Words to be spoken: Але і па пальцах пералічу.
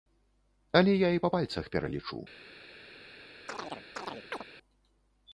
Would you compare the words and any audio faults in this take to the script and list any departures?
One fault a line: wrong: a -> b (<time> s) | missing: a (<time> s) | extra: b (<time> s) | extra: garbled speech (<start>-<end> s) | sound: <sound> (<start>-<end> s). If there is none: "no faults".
extra: я (0.9 s)
sound: chirp (3.5-4.4 s)